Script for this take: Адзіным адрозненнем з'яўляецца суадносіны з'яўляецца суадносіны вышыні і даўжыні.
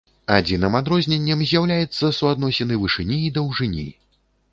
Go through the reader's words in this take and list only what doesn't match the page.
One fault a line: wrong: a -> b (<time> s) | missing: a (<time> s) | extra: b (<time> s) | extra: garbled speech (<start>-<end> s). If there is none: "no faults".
missing: з'яўляецца суадносіны (2.8 s)